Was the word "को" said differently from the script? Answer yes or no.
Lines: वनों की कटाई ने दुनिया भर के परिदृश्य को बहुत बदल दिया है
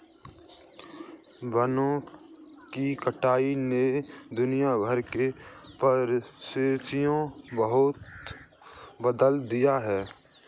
yes